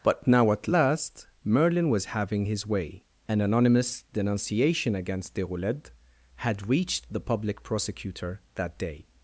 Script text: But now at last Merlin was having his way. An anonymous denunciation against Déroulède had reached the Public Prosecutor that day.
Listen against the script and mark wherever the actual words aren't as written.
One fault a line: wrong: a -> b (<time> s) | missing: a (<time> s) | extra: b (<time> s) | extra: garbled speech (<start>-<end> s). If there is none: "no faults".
no faults